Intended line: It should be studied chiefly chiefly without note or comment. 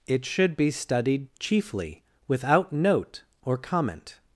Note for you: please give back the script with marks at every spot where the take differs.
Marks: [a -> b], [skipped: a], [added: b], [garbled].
It should be studied chiefly [skipped: chiefly] without note or comment.